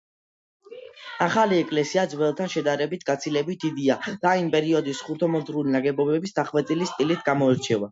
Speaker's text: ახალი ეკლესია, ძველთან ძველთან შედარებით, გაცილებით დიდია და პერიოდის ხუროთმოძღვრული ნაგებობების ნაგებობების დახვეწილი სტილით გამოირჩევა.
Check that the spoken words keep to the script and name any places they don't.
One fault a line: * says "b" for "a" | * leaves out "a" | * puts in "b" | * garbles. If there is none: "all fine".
* leaves out "ძველთან"
* puts in "იმ"
* leaves out "ნაგებობების"